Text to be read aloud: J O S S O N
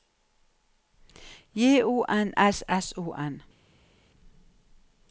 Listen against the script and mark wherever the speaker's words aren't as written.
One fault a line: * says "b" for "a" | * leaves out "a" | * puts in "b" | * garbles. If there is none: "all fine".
* puts in "N"